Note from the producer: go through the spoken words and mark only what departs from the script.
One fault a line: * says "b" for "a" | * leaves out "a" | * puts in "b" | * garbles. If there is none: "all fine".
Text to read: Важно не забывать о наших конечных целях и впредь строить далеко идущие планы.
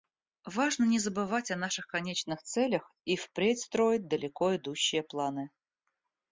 all fine